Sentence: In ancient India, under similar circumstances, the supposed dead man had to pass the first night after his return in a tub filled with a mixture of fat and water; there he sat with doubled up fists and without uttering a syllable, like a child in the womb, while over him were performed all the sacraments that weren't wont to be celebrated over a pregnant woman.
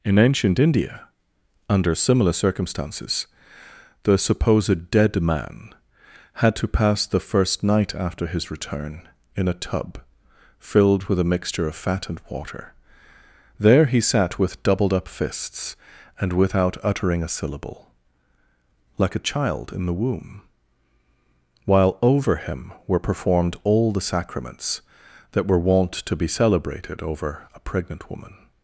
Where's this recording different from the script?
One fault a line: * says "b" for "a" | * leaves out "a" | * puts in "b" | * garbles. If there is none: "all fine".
* says "were" for "weren't"